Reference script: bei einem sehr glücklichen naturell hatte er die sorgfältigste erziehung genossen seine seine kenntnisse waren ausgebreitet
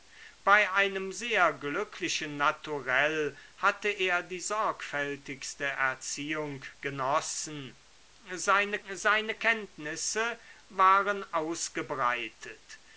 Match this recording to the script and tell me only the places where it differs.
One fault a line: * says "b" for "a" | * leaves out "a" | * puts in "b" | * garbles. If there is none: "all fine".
all fine